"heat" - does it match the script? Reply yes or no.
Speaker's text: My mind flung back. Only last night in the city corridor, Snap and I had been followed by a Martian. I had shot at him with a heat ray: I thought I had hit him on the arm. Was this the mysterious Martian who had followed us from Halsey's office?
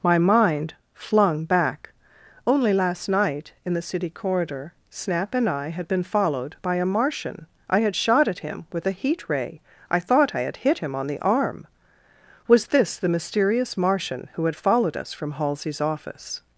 yes